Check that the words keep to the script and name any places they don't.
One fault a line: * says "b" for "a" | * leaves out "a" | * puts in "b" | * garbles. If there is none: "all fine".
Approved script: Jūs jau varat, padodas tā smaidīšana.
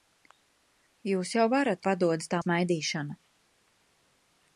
all fine